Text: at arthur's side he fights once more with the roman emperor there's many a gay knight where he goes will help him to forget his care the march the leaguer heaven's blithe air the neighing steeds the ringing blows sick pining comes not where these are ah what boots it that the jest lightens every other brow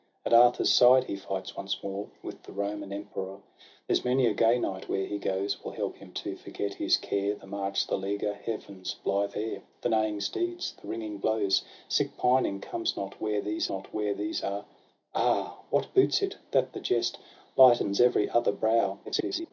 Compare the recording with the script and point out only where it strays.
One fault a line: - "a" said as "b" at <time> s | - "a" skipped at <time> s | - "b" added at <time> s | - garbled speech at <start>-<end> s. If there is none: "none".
- "not where these" added at 13.7 s
- garbled speech at 19.0-19.5 s